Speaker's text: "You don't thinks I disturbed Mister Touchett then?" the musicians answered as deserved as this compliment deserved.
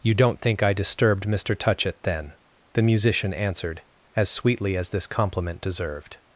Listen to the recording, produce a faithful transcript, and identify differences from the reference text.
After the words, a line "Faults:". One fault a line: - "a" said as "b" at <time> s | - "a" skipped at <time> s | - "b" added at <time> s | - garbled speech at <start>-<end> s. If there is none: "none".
"You don't think I disturbed Mister Touchett then?" the musician answered as sweetly as this compliment deserved.
Faults:
- "thinks" said as "think" at 0.4 s
- "musicians" said as "musician" at 2.8 s
- "deserved" said as "sweetly" at 4.3 s